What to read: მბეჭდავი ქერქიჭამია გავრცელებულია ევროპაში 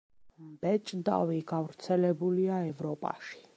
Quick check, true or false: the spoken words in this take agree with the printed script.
false